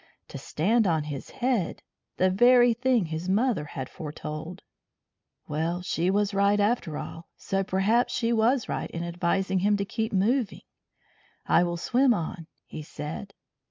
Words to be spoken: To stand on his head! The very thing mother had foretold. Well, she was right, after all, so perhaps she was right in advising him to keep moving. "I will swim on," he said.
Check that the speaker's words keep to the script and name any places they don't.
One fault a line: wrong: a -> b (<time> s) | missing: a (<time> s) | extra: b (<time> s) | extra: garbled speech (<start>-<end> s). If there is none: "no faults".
extra: his (3.0 s)